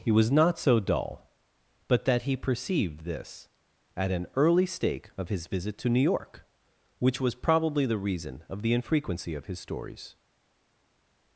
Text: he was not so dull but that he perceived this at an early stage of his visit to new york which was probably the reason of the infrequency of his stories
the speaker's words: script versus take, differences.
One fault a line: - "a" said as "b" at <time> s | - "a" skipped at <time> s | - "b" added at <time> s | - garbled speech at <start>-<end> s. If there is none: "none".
- "stage" said as "stake" at 4.6 s